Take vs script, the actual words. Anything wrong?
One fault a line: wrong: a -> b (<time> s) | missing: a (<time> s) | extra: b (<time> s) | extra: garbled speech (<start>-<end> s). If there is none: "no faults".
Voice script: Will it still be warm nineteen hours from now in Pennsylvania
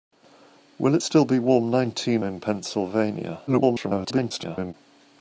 missing: hours from now (2.2 s)
extra: garbled speech (3.5-4.7 s)